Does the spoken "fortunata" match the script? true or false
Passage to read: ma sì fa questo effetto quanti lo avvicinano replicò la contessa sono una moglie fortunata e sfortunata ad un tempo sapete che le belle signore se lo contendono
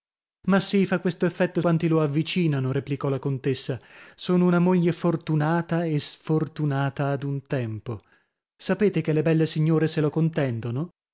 true